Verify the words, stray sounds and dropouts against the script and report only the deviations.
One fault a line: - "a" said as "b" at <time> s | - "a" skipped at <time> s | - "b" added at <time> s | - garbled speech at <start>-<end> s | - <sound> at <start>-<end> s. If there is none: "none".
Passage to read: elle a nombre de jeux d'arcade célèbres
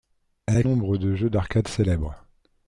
none